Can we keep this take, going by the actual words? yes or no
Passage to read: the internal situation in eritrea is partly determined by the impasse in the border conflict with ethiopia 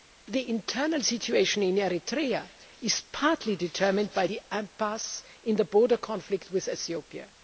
yes